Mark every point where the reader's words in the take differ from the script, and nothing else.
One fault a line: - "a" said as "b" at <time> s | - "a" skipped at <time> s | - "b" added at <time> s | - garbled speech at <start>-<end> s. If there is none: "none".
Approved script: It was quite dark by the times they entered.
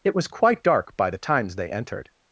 none